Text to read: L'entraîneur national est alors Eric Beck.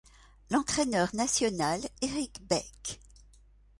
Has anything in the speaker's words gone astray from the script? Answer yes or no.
yes